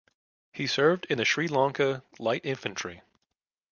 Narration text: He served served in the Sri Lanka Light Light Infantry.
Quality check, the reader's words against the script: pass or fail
fail